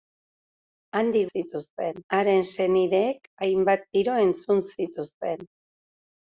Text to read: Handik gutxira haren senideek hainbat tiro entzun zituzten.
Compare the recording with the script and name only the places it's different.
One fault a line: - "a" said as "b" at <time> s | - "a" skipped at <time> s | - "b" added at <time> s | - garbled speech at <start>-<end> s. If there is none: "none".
- "gutxira" said as "zituzten" at 1.3 s